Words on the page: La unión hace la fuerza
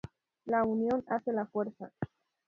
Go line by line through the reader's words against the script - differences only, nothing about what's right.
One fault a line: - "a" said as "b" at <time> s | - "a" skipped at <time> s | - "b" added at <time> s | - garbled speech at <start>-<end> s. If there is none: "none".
none